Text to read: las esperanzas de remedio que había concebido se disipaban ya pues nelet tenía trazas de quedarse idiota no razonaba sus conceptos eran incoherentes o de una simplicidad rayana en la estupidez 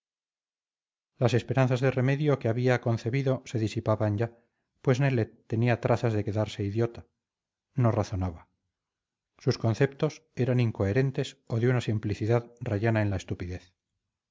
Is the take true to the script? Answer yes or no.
yes